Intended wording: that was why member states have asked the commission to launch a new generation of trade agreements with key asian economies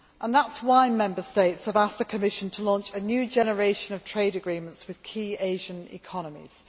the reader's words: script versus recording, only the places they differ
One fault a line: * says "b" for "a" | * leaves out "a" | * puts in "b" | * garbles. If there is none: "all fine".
* says "is" for "was"